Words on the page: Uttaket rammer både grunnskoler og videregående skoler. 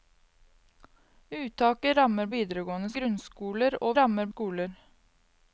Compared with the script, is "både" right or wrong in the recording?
wrong